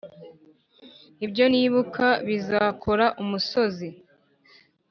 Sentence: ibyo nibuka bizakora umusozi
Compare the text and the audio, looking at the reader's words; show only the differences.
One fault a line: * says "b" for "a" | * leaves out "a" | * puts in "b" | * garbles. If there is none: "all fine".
all fine